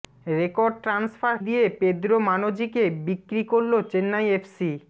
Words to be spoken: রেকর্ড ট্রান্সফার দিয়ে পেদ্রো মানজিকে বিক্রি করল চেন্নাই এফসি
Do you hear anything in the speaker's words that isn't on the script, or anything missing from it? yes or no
no